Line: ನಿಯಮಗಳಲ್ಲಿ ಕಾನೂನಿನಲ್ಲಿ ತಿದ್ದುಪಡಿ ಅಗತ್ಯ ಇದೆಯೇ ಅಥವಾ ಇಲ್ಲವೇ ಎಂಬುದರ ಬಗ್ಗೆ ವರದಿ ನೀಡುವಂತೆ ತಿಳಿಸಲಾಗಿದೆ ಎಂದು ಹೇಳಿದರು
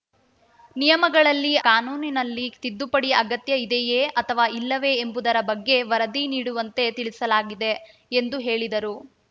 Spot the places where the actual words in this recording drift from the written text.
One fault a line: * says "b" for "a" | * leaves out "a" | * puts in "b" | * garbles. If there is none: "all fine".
all fine